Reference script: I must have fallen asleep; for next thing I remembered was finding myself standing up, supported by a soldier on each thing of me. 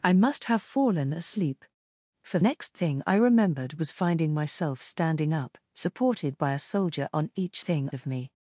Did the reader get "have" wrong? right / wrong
right